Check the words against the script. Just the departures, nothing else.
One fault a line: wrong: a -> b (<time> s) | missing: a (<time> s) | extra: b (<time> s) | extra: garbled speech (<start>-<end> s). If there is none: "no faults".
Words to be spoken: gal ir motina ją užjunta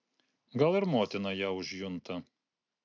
no faults